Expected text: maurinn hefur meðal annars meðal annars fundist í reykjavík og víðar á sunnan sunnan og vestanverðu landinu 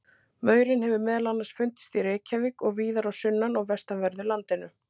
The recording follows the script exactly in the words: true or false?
false